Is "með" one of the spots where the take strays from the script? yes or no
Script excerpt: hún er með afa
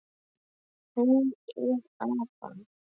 yes